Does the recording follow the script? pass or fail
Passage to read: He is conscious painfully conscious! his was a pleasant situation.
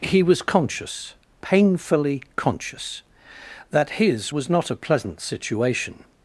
fail